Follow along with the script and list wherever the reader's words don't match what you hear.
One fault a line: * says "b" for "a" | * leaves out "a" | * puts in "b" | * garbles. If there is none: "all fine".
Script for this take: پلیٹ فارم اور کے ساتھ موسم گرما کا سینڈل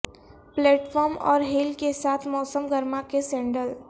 * puts in "ہیل"
* says "کے" for "کا"